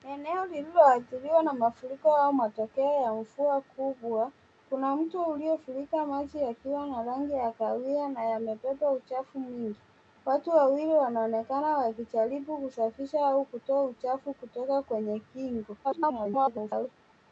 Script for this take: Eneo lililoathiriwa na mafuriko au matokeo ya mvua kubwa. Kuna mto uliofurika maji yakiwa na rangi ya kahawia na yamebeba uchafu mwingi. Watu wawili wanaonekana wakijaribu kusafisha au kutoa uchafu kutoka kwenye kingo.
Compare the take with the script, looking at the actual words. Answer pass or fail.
fail